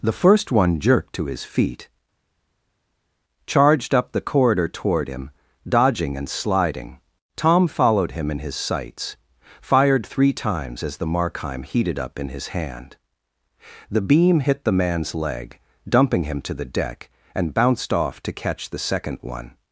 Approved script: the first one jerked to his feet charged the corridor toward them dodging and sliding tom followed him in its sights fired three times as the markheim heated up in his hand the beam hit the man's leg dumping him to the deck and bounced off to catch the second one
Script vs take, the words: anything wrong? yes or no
yes